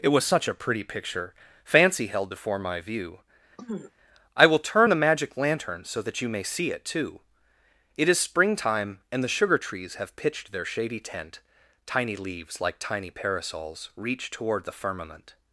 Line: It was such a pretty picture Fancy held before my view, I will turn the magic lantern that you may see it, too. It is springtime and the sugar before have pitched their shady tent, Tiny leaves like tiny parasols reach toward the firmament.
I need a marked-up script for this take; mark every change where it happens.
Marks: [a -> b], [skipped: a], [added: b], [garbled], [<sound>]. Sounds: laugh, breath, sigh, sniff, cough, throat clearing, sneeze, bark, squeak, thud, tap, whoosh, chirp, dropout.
It was such a pretty picture Fancy held before my view, [throat clearing] I will turn the magic lantern [added: so] that you may see it, too. It is springtime and the sugar [before -> trees] have pitched their shady tent, Tiny leaves like tiny parasols reach toward the firmament.